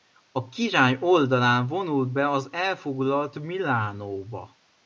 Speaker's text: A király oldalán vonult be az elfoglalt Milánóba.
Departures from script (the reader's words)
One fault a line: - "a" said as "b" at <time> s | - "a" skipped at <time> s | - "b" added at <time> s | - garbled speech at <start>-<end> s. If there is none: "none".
none